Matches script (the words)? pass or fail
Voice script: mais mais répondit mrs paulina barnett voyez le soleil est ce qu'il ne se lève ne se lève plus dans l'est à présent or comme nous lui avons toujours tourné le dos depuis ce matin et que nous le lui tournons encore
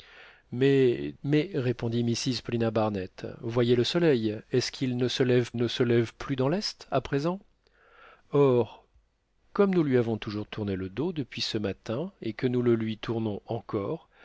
pass